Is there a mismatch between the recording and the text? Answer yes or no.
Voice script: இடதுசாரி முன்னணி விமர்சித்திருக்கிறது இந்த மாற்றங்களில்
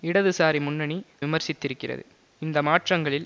no